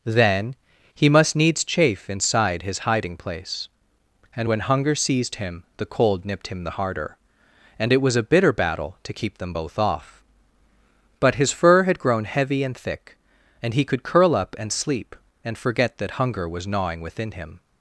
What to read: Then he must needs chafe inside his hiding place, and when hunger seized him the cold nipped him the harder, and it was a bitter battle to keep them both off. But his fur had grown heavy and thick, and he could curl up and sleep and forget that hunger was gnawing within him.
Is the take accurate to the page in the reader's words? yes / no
yes